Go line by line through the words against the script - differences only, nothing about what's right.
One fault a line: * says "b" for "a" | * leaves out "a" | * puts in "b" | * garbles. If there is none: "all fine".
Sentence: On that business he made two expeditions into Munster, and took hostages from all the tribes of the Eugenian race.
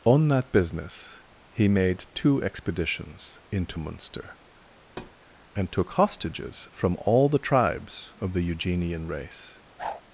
all fine